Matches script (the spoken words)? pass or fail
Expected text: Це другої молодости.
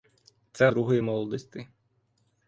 pass